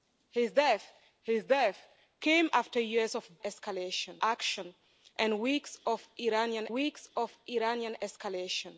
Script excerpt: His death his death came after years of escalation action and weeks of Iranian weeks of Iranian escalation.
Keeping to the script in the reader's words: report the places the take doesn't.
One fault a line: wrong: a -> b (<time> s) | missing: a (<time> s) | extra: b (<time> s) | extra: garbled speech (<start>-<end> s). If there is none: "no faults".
no faults